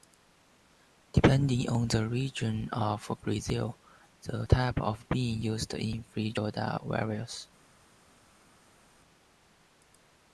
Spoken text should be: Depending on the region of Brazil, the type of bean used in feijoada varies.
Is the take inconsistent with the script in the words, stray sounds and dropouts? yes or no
no